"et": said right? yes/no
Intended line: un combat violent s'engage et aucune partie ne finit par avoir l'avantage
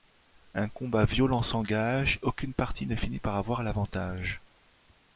no